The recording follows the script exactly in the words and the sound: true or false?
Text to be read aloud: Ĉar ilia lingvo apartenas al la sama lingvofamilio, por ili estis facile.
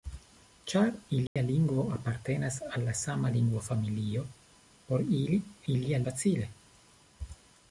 false